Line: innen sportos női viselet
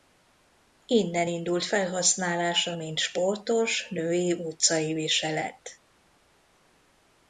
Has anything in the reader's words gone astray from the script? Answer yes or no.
yes